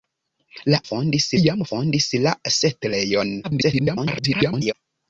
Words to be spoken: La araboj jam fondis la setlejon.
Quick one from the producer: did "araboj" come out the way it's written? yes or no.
no